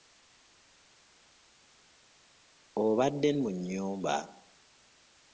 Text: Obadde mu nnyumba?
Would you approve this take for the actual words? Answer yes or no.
yes